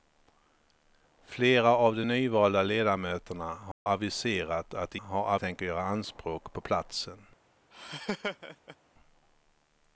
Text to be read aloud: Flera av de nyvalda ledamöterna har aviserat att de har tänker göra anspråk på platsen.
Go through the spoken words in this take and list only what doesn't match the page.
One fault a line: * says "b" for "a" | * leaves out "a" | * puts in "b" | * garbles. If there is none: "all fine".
all fine